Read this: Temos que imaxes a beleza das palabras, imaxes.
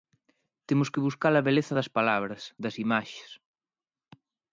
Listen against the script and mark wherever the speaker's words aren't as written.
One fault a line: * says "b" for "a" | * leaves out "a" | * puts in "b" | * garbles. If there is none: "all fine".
* says "buscar" for "imaxes"
* puts in "das"